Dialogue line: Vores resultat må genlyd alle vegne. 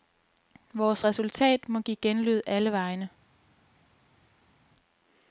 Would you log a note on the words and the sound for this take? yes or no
yes